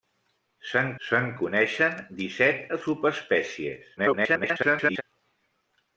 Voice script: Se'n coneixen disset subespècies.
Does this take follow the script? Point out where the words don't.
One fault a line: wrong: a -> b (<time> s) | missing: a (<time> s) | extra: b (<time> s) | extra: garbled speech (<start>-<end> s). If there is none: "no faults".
extra: se'n (1.1 s)
extra: garbled speech (4.0-5.0 s)